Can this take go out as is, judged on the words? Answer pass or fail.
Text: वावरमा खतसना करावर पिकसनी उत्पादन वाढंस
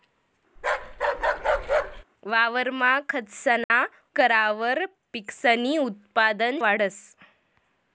pass